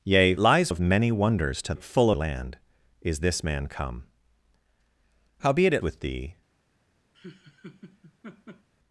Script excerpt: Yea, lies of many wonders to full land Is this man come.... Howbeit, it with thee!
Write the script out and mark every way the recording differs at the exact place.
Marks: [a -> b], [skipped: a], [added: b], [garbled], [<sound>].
Yea, lies of many wonders to full land Is this man come.... Howbeit, it with thee! [laugh]